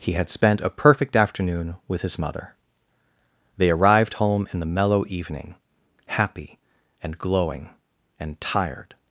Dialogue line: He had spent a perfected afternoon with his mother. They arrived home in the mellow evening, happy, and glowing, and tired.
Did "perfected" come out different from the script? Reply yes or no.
yes